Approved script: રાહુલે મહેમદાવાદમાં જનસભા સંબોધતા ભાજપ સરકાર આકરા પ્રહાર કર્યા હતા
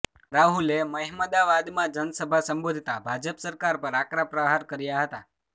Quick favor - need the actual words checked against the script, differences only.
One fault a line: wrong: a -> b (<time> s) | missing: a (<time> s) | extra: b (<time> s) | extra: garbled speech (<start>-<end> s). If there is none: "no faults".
extra: પર (3.9 s)